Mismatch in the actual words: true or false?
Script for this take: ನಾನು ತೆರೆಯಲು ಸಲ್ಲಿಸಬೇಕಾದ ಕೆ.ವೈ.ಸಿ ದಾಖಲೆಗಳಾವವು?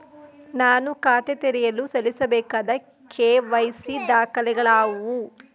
true